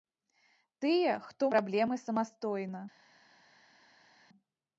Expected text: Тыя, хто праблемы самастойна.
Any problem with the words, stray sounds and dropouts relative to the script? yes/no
no